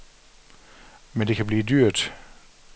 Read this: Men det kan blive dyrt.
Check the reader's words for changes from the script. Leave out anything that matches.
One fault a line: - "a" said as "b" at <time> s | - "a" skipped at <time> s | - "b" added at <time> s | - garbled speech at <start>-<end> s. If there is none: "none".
none